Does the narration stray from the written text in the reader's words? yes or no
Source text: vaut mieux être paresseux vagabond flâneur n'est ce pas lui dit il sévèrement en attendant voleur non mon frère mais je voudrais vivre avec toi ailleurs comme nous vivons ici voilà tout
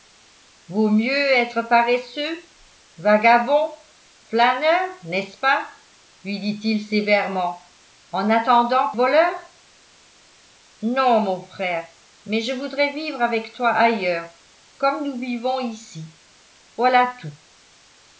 no